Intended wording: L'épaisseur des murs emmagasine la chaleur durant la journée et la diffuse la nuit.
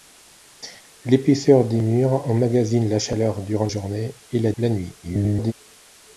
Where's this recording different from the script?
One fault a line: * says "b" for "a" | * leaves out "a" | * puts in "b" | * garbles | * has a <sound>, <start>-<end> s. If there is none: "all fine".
* leaves out "la"
* leaves out "diffuse"
* garbles